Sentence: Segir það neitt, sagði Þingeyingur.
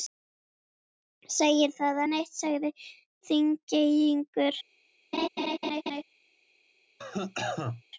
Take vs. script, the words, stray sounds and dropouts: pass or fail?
fail